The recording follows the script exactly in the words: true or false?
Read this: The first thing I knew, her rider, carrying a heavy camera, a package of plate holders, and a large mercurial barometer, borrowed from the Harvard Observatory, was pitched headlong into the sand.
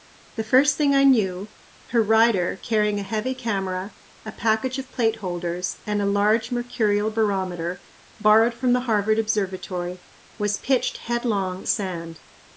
false